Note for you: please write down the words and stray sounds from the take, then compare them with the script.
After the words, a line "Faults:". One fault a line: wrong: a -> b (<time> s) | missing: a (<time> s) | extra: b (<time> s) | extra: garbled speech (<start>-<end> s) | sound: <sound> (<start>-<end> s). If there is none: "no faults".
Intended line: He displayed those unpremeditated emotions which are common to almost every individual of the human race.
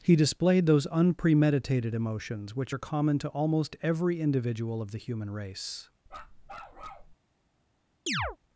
He displayed those unpremeditated emotions which are common to almost every individual of the human race.
Faults:
sound: bark (6.1-7.1 s)
sound: chirp (8.1-8.4 s)